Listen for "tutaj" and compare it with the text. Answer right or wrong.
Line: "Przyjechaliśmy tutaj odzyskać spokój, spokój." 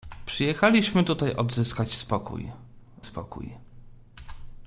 right